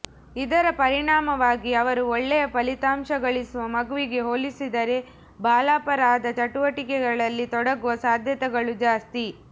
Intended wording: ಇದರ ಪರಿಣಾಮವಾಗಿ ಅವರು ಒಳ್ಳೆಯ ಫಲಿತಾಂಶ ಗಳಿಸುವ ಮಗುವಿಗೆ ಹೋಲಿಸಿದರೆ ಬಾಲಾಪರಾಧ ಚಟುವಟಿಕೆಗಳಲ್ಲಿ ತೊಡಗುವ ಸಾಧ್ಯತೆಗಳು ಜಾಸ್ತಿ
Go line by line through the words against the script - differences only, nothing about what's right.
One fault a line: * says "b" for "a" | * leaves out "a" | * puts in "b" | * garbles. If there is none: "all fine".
all fine